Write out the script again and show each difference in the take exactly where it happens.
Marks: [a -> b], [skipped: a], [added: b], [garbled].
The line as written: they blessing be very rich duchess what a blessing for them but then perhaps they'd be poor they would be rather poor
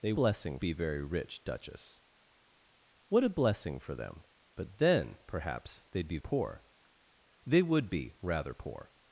they blessing be very rich duchess what a blessing for them but then perhaps they'd be poor they would be rather poor